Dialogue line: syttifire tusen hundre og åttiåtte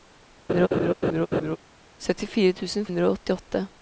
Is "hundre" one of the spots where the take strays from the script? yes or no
no